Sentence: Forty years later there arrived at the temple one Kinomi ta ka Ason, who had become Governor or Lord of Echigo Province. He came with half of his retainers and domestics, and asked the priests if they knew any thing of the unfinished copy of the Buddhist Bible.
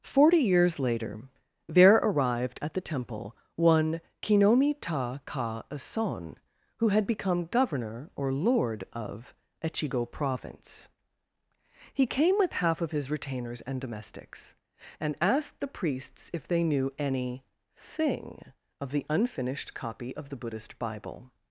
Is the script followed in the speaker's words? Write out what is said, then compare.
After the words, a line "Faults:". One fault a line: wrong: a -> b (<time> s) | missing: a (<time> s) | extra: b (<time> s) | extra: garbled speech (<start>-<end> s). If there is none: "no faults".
Forty years later there arrived at the temple one Kinomi ta ka Ason, who had become Governor or Lord of Echigo Province. He came with half of his retainers and domestics, and asked the priests if they knew any thing of the unfinished copy of the Buddhist Bible.
Faults:
no faults